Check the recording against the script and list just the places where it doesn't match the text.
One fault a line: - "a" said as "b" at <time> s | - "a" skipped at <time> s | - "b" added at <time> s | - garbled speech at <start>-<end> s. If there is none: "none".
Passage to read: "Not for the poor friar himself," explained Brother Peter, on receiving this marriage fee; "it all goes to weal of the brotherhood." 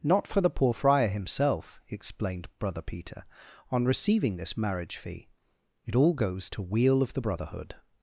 none